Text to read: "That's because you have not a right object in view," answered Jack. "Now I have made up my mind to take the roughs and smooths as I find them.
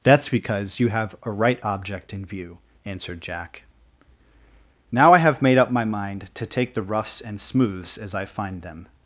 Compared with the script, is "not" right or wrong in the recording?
wrong